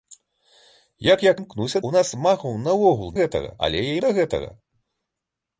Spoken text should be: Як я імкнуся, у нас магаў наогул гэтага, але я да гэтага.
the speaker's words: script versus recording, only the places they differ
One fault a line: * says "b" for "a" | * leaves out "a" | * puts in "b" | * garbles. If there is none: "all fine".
all fine